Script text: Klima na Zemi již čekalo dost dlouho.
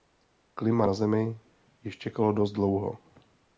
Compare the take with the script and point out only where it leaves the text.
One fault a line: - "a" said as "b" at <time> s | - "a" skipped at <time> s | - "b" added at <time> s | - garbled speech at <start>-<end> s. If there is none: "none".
none